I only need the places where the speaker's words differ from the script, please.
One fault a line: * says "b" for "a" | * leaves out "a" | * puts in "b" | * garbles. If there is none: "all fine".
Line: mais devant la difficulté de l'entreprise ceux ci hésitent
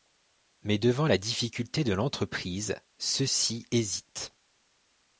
all fine